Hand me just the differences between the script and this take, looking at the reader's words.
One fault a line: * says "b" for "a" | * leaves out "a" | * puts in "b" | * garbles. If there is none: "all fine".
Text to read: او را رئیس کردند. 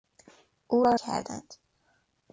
* leaves out "رئیس"